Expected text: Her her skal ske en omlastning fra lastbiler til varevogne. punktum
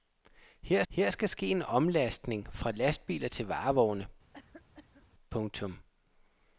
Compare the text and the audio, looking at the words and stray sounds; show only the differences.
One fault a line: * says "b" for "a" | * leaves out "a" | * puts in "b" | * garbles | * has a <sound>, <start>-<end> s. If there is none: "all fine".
* has a cough, 4.3-5.1 s